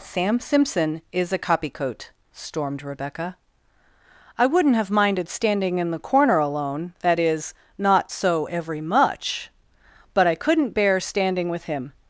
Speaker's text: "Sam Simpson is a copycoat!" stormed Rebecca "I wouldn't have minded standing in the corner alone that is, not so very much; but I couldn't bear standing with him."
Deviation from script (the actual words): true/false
true